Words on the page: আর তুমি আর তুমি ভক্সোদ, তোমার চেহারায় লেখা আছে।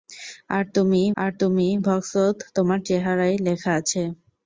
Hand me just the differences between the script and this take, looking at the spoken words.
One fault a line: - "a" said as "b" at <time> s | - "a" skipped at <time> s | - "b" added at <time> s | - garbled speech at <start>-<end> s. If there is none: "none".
none